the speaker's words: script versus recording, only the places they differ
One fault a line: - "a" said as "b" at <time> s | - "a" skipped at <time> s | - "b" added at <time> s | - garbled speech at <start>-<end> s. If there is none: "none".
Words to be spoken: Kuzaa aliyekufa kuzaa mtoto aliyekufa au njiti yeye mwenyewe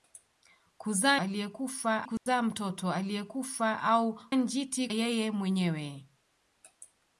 none